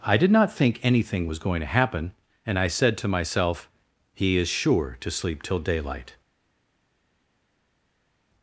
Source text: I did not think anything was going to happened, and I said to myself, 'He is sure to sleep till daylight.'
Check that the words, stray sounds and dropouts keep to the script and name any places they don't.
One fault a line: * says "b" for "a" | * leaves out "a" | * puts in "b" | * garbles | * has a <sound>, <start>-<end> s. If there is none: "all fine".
* says "happen" for "happened"